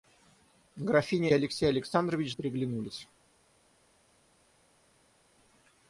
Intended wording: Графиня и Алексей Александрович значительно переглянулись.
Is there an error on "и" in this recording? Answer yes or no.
yes